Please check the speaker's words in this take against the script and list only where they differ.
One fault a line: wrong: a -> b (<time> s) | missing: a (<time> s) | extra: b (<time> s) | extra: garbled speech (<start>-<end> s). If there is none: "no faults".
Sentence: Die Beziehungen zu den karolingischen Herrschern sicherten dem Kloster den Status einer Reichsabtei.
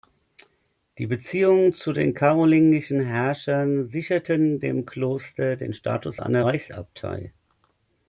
no faults